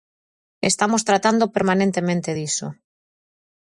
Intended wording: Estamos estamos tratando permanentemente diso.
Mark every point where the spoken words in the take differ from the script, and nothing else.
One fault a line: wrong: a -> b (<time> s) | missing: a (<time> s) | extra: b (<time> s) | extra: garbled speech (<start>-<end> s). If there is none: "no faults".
missing: estamos (1.0 s)